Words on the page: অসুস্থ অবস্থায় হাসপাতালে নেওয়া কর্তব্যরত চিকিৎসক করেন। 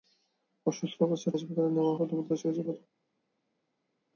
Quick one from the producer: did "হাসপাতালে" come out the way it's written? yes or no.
yes